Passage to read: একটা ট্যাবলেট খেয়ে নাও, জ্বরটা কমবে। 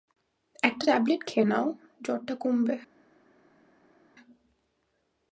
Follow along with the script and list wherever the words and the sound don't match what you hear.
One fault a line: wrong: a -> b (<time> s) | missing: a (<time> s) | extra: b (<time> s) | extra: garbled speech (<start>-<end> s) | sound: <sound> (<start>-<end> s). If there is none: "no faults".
no faults